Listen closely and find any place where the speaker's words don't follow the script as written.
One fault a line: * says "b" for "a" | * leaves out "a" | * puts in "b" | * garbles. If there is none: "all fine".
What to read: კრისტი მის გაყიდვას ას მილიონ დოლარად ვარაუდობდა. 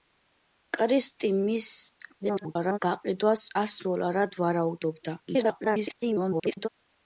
* garbles
* leaves out "მილიონ"
* garbles